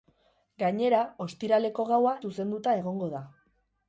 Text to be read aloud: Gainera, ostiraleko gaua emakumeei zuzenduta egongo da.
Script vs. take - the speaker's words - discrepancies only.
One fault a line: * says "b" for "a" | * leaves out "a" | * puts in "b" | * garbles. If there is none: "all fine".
* leaves out "emakumeei"